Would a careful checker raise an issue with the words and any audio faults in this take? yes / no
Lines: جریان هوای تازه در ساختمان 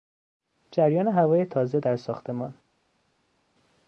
no